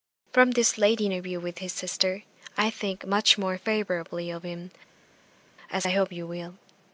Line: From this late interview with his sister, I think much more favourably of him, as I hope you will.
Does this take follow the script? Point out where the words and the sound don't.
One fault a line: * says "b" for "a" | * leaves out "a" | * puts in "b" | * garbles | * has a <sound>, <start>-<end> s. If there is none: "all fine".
all fine